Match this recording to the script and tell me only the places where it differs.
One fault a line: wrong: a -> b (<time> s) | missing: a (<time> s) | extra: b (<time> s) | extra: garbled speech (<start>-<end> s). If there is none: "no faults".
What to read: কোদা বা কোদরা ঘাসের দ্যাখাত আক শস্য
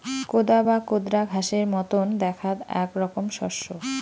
extra: মতন (1.7 s)
extra: রকম (3.0 s)